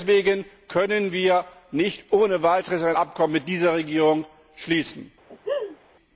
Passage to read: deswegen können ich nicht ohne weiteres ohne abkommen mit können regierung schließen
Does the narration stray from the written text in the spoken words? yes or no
yes